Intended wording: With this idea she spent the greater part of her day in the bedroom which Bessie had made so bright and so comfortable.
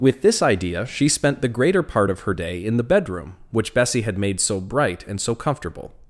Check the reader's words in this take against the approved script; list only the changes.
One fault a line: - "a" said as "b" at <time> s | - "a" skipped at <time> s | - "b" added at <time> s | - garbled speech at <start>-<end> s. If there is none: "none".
none